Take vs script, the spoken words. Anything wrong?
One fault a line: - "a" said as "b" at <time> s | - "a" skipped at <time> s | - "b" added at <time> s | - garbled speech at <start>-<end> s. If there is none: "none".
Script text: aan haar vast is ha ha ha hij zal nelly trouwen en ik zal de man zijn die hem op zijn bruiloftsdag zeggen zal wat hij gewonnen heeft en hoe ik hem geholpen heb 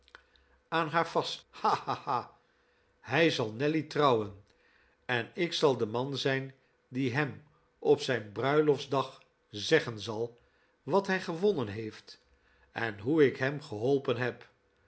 - "is" skipped at 1.4 s